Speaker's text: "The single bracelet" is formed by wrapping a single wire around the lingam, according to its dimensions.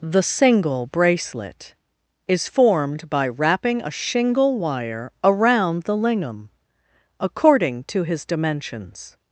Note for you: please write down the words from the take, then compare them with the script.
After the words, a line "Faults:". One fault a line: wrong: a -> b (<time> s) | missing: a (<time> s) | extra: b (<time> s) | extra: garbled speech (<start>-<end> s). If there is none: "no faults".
"The single bracelet" is formed by wrapping a shingle wire around the lingam, according to his dimensions.
Faults:
wrong: single -> shingle (3.9 s)
wrong: its -> his (8.0 s)